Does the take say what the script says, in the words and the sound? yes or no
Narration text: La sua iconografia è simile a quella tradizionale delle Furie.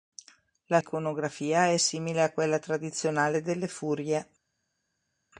no